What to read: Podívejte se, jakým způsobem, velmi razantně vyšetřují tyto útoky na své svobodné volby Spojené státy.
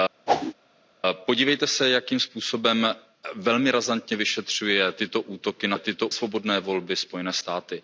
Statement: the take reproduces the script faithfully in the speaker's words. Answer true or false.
false